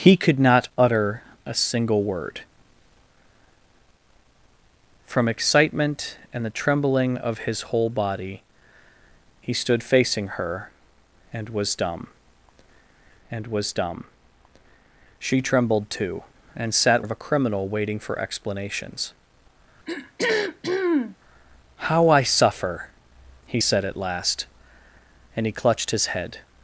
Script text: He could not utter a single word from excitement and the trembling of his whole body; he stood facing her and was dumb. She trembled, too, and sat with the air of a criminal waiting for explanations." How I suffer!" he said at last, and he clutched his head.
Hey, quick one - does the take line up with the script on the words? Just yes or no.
no